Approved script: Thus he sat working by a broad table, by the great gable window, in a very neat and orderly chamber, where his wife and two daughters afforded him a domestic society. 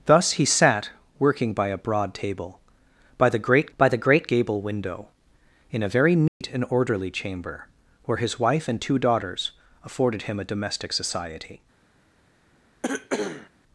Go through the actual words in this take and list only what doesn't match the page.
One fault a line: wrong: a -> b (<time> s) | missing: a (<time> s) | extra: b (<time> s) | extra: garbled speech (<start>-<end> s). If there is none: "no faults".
extra: by the great (3.8 s)